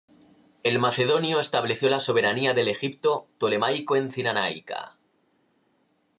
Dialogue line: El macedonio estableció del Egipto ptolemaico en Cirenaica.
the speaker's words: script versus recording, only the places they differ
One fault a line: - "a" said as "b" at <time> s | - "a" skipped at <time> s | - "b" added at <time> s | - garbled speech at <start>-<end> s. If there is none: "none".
- "la soberanía" added at 1.9 s